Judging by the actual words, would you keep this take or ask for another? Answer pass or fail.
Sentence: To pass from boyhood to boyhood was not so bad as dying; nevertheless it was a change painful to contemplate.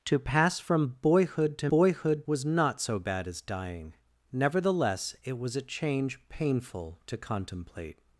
pass